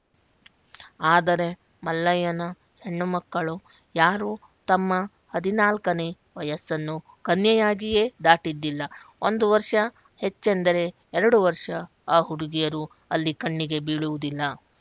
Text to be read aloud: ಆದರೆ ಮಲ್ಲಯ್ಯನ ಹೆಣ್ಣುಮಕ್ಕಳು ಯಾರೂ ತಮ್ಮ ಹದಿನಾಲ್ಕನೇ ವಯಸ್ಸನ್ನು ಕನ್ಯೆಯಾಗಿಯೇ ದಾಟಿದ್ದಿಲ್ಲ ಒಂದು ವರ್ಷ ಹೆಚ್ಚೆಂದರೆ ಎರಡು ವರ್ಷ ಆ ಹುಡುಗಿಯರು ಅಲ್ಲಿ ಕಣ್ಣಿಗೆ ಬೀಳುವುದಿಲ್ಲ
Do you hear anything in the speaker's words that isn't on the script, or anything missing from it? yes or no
no